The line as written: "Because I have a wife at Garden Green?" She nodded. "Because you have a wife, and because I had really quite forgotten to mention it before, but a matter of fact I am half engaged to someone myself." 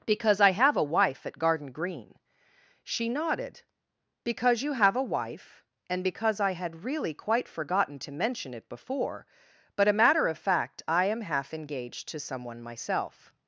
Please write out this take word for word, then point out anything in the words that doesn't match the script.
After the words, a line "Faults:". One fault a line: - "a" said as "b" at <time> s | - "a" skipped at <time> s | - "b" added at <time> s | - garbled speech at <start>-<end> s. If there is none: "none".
"Because I have a wife at Garden Green?" She nodded. "Because you have a wife, and because I had really quite forgotten to mention it before, but a matter of fact I am half engaged to someone myself."
Faults:
none